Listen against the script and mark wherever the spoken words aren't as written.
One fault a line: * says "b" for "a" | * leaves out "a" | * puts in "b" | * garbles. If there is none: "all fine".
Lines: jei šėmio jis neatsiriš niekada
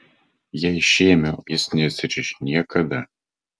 all fine